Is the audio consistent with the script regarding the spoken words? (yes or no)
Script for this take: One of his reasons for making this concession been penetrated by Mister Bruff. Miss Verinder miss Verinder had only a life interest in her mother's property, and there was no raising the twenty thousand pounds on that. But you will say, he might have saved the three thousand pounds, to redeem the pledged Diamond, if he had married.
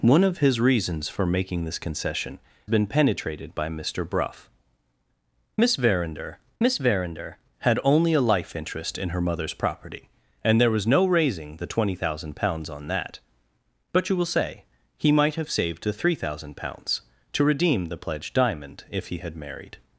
yes